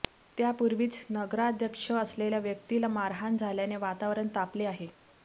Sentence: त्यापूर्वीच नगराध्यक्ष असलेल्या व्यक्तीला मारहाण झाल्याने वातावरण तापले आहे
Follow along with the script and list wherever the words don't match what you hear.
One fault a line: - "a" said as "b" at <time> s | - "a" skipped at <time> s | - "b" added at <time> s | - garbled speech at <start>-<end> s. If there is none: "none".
none